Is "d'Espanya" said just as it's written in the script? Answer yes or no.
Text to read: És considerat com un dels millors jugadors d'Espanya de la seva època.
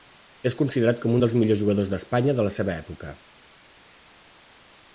yes